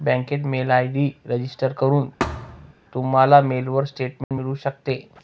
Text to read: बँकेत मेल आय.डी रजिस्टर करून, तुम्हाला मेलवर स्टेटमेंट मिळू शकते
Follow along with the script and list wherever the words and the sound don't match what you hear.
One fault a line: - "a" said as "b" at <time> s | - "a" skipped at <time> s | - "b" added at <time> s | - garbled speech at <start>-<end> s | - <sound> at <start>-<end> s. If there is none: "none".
- thud at 2.2-2.7 s
- dropout at 4.2-4.3 s